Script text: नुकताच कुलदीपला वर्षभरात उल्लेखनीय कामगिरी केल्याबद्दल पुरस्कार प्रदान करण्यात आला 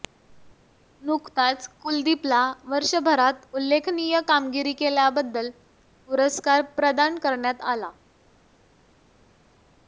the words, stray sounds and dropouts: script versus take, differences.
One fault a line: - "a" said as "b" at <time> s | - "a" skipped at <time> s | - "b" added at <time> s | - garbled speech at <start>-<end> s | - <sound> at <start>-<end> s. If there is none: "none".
none